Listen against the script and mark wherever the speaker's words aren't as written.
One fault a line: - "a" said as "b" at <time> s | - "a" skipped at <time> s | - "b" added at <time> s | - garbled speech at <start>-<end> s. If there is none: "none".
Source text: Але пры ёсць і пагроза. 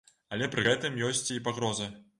- "гэтым" added at 0.7 s